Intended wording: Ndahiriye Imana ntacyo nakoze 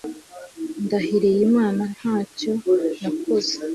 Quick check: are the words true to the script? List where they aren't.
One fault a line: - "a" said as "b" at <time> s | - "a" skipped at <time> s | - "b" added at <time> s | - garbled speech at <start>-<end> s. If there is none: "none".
none